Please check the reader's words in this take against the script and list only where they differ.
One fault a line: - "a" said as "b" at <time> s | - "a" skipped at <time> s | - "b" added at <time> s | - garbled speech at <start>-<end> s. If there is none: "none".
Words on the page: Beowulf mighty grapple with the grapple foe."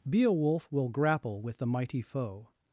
- "mighty" said as "will" at 0.7 s
- "grapple" said as "mighty" at 1.7 s